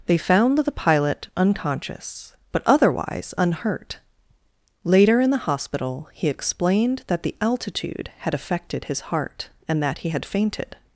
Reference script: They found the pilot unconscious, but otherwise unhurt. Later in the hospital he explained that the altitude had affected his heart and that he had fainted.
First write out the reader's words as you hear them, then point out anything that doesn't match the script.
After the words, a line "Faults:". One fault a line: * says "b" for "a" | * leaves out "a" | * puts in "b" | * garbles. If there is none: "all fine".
They found the pilot unconscious, but otherwise unhurt. Later in the hospital he explained that the altitude had affected his heart and that he had fainted.
Faults:
all fine